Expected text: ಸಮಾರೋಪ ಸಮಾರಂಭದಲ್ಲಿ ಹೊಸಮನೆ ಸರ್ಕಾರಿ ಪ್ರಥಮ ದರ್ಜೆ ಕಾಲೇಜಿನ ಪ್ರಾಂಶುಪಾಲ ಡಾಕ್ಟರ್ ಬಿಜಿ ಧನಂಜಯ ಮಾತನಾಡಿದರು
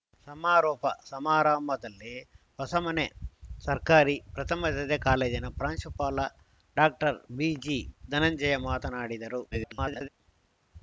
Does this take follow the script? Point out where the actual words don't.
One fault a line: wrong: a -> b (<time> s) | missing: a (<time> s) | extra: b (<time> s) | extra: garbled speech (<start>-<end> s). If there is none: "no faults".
extra: garbled speech (9.5-10.1 s)